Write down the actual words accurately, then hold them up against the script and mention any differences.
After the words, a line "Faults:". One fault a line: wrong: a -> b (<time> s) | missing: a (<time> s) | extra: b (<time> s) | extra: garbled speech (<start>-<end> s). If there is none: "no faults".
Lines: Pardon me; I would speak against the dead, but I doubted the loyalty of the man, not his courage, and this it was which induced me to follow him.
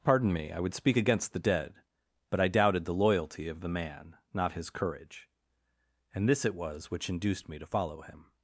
Pardon me; I would speak against the dead, but I doubted the loyalty of the man, not his courage, and this it was which induced me to follow him.
Faults:
no faults